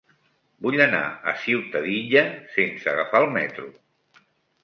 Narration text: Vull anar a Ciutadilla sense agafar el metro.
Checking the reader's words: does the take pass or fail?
pass